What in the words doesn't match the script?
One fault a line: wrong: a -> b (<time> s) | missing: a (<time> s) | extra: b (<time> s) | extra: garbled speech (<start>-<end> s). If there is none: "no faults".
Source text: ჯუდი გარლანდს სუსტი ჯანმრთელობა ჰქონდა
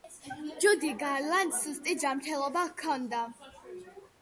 no faults